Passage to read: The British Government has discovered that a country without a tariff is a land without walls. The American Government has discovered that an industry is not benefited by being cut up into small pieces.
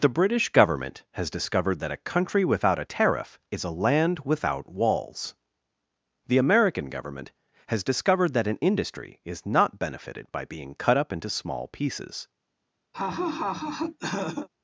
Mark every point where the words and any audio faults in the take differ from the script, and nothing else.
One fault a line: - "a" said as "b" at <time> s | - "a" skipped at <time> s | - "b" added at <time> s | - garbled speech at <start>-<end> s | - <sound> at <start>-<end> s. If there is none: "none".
- laugh at 12.9-14.5 s